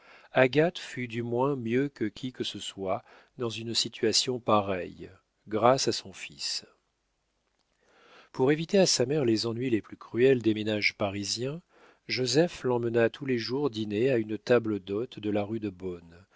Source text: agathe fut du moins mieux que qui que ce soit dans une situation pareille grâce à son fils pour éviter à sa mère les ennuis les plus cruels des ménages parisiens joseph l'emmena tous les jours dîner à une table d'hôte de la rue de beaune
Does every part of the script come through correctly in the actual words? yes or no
yes